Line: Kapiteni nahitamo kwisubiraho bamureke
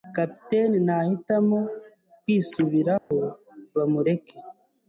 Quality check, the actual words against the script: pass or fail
pass